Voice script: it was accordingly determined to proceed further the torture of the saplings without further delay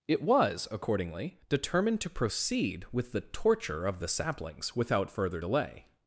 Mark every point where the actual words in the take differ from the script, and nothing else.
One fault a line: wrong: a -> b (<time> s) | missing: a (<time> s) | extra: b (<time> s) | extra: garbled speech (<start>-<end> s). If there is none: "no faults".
wrong: further -> with (2.9 s)